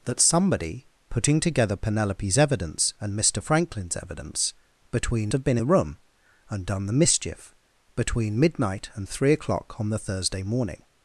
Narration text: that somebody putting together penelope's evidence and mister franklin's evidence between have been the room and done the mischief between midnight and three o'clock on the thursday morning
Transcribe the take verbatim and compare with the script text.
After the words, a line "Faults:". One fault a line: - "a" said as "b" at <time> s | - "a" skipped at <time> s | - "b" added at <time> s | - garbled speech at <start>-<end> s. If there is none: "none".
that somebody putting together penelope's evidence and mister franklin's evidence between have been the room and done the mischief between midnight and three o'clock on the thursday morning
Faults:
none